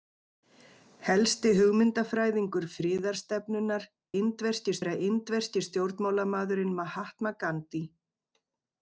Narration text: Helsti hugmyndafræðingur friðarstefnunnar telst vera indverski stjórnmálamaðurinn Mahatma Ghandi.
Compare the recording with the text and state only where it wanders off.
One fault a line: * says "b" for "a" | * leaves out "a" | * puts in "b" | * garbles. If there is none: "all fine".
* says "indverski" for "telst"